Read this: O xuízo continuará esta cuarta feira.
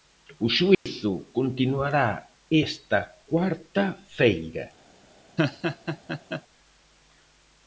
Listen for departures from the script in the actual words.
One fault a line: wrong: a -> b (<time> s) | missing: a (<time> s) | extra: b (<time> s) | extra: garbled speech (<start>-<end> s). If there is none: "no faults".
no faults